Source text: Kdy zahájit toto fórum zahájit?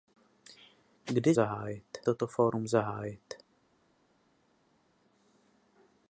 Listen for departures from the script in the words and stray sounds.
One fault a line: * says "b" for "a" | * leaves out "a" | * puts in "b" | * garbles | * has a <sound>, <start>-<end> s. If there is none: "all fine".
all fine